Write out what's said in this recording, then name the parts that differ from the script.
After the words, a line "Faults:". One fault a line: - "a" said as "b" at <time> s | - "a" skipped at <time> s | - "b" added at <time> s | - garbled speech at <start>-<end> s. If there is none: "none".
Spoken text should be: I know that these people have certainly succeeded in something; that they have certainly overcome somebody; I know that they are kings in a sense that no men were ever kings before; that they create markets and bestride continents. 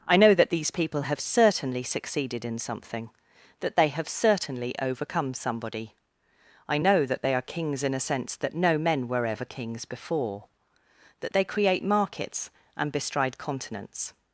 I know that these people have certainly succeeded in something; that they have certainly overcome somebody; I know that they are kings in a sense that no men were ever kings before; that they create markets and bestride continents.
Faults:
none